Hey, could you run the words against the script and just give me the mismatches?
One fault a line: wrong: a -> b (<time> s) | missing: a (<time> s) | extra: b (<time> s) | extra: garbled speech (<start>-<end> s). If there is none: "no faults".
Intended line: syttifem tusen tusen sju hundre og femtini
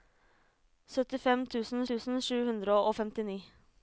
no faults